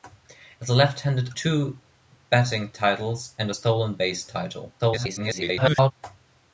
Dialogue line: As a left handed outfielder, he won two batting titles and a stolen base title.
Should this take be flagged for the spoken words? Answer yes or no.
yes